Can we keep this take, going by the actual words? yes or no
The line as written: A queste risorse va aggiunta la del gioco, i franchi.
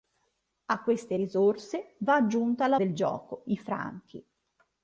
yes